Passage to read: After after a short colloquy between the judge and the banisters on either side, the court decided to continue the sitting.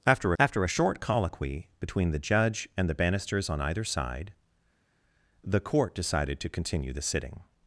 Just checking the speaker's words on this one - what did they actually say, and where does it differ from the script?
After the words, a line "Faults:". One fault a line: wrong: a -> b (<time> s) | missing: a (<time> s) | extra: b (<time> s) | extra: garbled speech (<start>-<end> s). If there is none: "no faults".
After after a short colloquy between the judge and the banisters on either side, the court decided to continue the sitting.
Faults:
no faults